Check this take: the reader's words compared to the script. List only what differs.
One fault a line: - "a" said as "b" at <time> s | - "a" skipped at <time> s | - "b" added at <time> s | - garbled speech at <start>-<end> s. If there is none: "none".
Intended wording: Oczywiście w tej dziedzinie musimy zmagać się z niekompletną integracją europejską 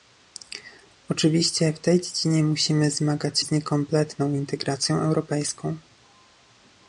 - "się" skipped at 3.4 s